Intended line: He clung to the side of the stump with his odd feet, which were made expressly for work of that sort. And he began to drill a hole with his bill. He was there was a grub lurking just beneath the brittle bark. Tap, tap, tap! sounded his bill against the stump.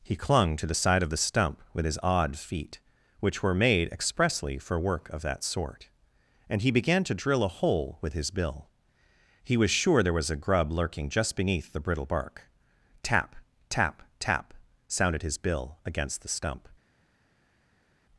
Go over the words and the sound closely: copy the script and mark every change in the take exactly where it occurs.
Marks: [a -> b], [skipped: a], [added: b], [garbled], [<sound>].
He clung to the side of the stump with his odd feet, which were made expressly for work of that sort. And he began to drill a hole with his bill. He was [added: sure] there was a grub lurking just beneath the brittle bark. Tap, tap, tap! sounded his bill against the stump.